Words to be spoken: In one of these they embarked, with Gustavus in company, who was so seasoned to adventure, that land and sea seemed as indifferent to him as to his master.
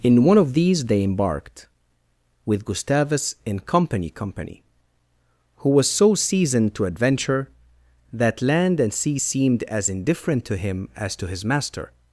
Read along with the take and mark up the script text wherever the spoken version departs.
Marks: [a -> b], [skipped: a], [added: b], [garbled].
In one of these they embarked, with Gustavus in company, [added: company] who was so seasoned to adventure, that land and sea seemed as indifferent to him as to his master.